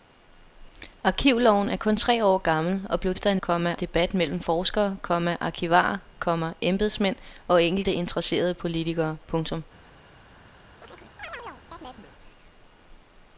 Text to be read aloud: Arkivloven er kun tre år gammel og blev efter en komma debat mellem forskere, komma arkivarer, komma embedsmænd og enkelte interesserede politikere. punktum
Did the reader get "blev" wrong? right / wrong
right